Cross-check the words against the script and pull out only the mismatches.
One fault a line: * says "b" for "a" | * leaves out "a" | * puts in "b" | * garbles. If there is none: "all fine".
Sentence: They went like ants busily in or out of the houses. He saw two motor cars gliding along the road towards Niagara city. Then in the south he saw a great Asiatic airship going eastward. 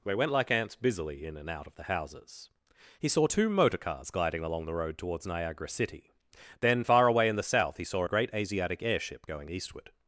* says "and" for "or"
* puts in "far away"